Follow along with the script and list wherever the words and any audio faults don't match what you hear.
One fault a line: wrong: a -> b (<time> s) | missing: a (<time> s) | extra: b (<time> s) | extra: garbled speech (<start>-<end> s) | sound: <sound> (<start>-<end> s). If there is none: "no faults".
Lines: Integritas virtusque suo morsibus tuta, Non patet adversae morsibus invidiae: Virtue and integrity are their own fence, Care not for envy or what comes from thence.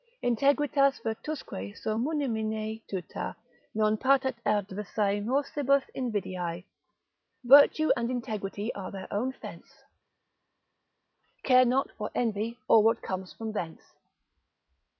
wrong: morsibus -> munimine (2.0 s)